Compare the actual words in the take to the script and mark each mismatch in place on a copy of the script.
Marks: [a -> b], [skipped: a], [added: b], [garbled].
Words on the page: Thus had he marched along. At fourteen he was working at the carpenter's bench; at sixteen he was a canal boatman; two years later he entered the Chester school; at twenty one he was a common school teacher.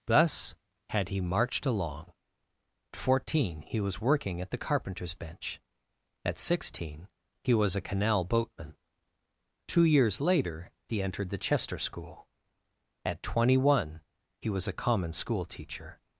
Thus had he marched along. [skipped: At] fourteen he was working at the carpenter's bench; at sixteen he was a canal boatman; two years later he entered the Chester school; at twenty one he was a common school teacher.